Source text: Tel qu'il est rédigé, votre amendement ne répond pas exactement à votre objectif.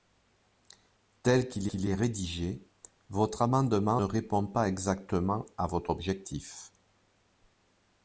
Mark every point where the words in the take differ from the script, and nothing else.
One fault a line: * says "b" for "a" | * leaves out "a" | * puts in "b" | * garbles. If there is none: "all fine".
* puts in "qu'il"
* leaves out "ne"